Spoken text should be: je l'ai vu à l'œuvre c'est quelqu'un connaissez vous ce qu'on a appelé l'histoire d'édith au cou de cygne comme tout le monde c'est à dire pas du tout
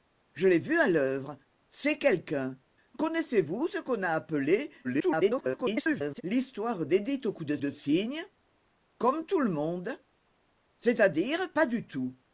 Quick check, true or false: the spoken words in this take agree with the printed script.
false